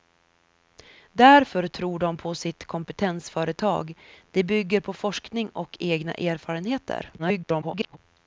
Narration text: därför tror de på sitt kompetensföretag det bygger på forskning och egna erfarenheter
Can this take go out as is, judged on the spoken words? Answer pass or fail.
fail